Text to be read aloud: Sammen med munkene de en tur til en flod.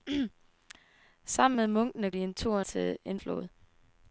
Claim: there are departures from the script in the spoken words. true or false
false